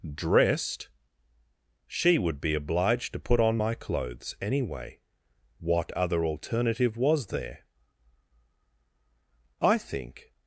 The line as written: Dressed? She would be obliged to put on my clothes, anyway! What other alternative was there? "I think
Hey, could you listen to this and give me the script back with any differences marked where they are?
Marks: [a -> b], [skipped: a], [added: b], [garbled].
Dressed? She would be obliged to put on my clothes, anyway! What other alternative was there? "I think